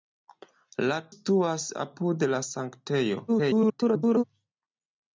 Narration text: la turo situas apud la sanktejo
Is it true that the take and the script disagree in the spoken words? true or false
true